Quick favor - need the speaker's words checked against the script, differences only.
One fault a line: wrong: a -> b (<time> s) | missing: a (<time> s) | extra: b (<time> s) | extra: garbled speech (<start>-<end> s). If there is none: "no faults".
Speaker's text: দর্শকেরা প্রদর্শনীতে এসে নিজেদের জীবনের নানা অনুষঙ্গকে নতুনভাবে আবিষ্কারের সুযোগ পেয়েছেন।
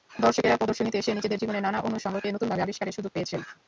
no faults